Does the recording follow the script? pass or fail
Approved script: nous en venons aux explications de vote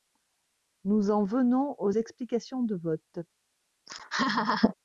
pass